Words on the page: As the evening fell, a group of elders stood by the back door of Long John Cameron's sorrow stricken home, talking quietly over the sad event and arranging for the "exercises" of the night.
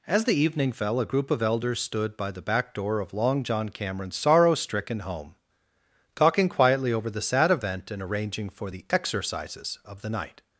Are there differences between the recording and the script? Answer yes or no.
no